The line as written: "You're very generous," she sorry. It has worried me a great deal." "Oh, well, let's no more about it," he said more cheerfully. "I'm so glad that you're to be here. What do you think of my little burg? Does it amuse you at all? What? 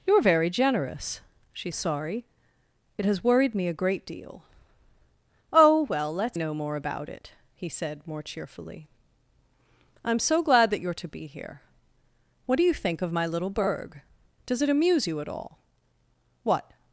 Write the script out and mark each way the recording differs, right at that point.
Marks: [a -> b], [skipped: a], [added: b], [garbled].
"You're very generous," she sorry. It has worried me a great deal." "Oh, well, let's no more about it," he said more cheerfully. "I'm so glad that you're to be here. What do you think of my little burg? Does it amuse you at all? What?